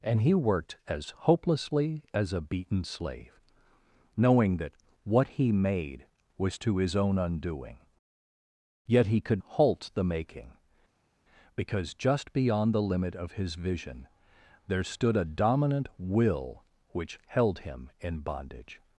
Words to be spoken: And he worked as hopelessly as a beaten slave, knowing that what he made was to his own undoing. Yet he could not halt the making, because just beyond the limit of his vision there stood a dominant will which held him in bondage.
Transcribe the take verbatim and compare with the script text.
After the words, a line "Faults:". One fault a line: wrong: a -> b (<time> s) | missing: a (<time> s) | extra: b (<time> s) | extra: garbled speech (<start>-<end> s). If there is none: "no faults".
And he worked as hopelessly as a beaten slave, knowing that what he made was to his own undoing. Yet he could halt the making, because just beyond the limit of his vision there stood a dominant will which held him in bondage.
Faults:
missing: not (9.4 s)